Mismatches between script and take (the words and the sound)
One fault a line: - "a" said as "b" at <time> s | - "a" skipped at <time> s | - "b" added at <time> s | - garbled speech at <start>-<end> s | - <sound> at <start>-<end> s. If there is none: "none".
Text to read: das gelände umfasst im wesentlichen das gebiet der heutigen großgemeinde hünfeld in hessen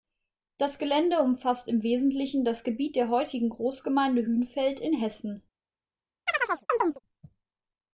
- chirp at 6.3-7.0 s